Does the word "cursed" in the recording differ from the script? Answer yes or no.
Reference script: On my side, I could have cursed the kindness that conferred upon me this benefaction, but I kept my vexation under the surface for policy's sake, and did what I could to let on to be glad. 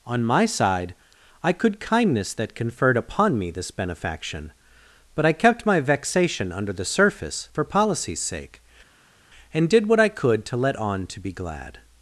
yes